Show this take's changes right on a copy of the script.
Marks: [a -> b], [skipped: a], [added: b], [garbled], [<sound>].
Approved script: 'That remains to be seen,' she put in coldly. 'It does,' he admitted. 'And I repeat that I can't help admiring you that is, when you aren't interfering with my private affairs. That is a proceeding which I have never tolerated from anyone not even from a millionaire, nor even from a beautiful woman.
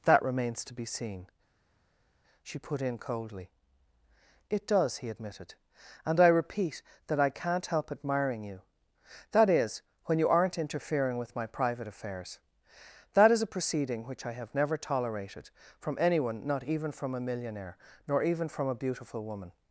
'That remains to be seen,' she put in coldly. 'It does,' he admitted. 'And I repeat that I can't help admiring you that is, when you aren't interfering with my private affairs. That is a proceeding which I have never tolerated from anyone not even from a millionaire, nor even from a beautiful woman.